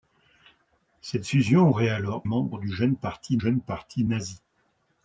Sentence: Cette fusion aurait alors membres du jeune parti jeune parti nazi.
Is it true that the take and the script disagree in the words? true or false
false